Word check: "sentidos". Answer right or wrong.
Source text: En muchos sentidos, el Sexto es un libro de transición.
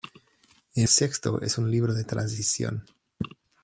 wrong